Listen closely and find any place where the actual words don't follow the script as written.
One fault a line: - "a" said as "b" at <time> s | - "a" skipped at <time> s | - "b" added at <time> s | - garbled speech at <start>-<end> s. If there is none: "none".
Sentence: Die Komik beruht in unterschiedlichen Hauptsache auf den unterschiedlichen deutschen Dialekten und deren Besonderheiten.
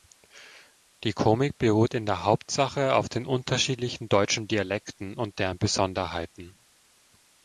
- "unterschiedlichen" said as "der" at 2.1 s